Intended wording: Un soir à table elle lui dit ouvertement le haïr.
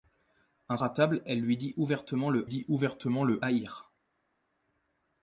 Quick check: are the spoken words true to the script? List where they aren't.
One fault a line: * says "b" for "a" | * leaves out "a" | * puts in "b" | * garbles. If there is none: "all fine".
* leaves out "soir"
* puts in "dit ouvertement le"